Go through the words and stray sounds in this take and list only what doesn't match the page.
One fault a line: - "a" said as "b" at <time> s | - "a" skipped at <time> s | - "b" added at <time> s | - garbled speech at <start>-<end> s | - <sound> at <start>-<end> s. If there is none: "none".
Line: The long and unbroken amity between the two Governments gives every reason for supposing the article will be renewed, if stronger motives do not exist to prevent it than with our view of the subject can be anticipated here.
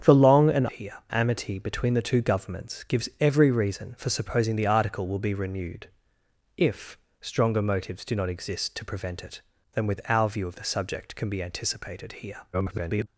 - "unbroken" said as "here" at 0.7 s
- garbled speech at 12.5-13.1 s